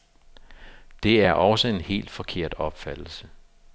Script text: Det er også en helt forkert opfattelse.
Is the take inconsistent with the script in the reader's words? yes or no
no